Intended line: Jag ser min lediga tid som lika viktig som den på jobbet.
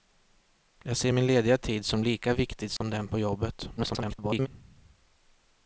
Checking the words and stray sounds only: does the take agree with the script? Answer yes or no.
no